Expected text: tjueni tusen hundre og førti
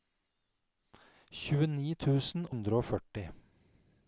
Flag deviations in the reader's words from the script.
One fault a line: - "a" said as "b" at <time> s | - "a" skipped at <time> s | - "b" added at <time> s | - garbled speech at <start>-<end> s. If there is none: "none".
none